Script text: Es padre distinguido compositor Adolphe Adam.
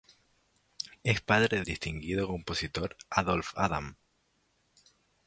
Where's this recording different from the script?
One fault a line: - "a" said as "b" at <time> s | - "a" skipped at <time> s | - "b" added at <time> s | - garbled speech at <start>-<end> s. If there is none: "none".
none